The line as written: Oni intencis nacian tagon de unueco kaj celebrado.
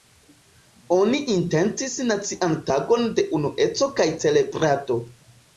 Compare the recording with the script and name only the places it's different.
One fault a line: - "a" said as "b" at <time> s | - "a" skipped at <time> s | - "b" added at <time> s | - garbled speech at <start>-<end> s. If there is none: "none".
none